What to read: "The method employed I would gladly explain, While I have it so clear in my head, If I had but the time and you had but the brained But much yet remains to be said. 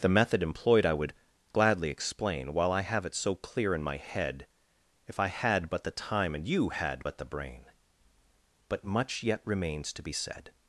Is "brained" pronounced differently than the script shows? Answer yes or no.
yes